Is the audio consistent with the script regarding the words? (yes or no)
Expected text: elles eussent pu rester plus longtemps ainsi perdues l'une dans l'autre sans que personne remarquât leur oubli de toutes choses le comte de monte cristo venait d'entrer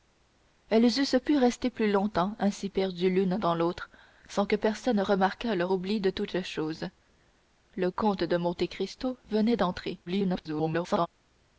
no